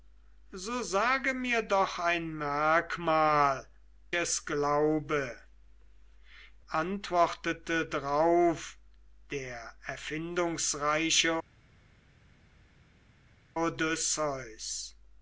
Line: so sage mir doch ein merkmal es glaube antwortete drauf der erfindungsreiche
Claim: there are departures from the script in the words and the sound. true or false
false